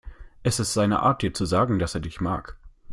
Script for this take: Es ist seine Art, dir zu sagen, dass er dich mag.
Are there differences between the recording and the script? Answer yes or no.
no